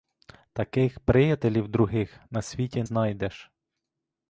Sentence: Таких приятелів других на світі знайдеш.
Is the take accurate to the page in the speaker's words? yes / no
yes